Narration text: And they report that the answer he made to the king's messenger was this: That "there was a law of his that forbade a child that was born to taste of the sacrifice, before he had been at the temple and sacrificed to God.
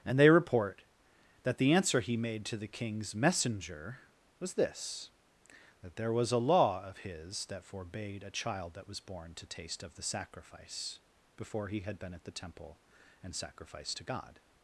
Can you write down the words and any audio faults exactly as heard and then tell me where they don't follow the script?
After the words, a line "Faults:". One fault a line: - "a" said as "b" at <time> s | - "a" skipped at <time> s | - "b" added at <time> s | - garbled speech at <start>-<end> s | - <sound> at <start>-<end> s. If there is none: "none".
And they report that the answer he made to the king's messenger was this: That "there was a law of his that forbade a child that was born to taste of the sacrifice, before he had been at the temple and sacrificed to God.
Faults:
none